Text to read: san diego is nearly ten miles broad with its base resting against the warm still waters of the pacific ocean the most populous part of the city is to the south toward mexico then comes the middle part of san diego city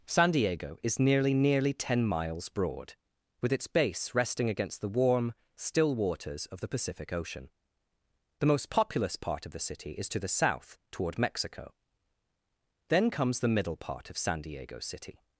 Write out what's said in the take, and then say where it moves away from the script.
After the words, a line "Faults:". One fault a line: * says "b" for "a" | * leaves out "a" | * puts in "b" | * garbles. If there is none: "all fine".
san diego is nearly nearly ten miles broad with its base resting against the warm still waters of the pacific ocean the most populous part of the city is to the south toward mexico then comes the middle part of san diego city
Faults:
* puts in "nearly"